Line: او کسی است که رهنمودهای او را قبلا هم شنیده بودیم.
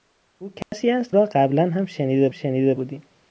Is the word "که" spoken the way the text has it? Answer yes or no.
no